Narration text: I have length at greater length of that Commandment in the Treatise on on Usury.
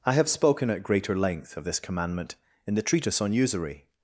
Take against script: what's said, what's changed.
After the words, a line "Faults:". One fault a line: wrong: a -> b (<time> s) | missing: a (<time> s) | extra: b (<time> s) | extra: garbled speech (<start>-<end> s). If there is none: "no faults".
I have spoken at greater length of this Commandment in the Treatise on Usury.
Faults:
wrong: length -> spoken (0.3 s)
wrong: that -> this (1.7 s)
missing: on (3.3 s)